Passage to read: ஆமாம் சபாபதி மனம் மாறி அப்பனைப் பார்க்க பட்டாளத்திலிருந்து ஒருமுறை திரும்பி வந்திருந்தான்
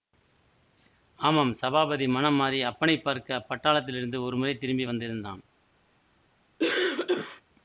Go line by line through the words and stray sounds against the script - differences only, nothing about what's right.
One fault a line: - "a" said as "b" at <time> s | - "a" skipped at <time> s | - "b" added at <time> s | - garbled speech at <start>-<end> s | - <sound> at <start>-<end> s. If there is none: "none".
- cough at 6.6-7.4 s